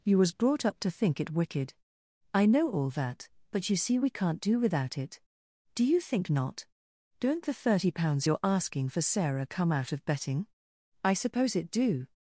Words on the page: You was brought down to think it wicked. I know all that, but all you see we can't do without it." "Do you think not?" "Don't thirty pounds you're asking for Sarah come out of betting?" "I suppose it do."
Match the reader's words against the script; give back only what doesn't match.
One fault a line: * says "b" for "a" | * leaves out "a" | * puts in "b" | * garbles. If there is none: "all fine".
* says "up" for "down"
* leaves out "all"
* puts in "the"